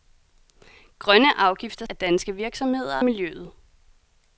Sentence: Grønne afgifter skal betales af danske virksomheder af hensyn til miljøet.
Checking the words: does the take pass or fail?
fail